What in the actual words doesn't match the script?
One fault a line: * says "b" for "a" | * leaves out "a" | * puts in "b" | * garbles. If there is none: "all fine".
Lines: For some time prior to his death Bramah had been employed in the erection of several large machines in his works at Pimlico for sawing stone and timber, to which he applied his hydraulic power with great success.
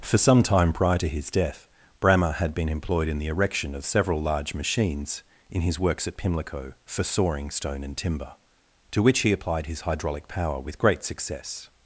all fine